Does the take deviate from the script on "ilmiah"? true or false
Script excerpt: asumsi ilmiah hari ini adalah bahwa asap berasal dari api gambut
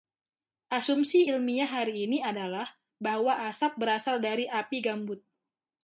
false